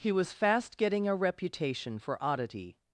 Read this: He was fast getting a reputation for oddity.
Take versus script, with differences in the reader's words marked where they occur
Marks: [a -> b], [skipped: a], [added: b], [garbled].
He was fast getting a reputation for oddity.